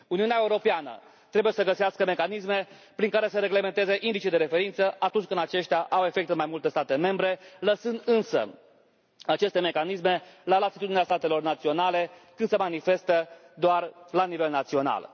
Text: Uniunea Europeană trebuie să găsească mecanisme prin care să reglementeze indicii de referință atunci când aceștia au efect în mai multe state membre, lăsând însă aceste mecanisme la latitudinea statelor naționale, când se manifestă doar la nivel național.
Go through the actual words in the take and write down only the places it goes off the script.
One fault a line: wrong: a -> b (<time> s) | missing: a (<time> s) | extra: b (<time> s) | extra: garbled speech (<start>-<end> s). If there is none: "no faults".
no faults